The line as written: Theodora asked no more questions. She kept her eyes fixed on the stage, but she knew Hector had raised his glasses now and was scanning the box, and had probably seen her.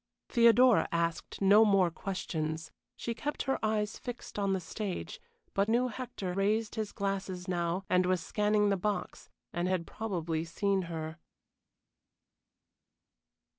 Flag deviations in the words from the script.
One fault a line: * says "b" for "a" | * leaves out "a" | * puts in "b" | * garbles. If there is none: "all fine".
* leaves out "she"
* leaves out "had"